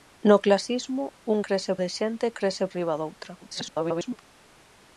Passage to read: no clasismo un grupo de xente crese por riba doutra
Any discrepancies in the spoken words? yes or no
yes